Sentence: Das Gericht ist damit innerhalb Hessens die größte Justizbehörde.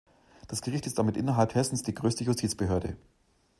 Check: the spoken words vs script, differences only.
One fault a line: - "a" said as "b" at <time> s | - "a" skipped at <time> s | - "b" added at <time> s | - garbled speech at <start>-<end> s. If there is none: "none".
none